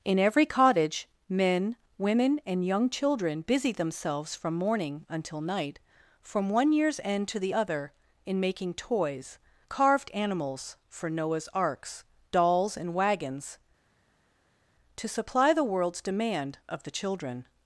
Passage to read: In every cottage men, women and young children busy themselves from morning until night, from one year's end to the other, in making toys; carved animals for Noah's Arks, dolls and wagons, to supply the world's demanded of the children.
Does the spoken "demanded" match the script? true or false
false